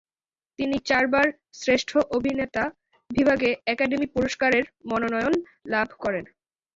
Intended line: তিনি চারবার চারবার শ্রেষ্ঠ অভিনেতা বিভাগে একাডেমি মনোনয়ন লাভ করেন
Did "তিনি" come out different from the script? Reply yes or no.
no